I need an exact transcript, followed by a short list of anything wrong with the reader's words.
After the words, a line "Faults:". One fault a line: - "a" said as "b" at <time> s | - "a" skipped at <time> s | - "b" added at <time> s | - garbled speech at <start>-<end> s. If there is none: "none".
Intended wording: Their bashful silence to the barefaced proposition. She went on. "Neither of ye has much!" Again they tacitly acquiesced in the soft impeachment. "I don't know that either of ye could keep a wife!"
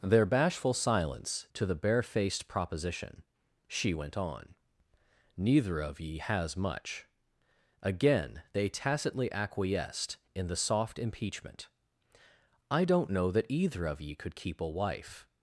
Their bashful silence to the barefaced proposition. She went on. "Neither of ye has much!" Again they tacitly acquiesced in the soft impeachment. "I don't know that either of ye could keep a wife!"
Faults:
none